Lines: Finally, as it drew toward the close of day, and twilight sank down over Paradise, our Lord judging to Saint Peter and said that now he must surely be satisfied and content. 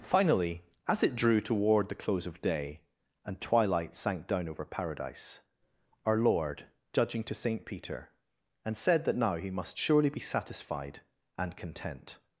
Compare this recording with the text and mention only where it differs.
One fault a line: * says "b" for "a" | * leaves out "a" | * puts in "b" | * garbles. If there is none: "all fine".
all fine